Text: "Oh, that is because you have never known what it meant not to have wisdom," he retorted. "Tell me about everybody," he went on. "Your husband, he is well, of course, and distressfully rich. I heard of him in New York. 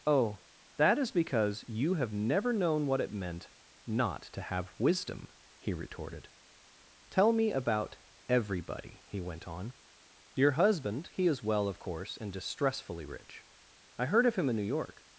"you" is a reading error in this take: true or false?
false